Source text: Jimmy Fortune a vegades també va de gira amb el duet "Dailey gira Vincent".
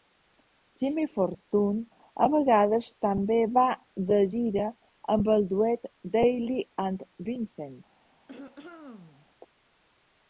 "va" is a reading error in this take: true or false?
false